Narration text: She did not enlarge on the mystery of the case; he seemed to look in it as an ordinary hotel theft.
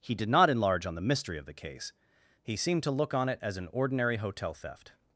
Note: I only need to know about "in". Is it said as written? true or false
false